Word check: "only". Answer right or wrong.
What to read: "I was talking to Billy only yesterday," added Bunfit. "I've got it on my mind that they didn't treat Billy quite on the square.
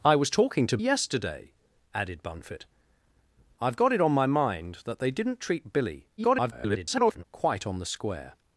wrong